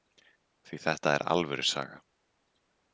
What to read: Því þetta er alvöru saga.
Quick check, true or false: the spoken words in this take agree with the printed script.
true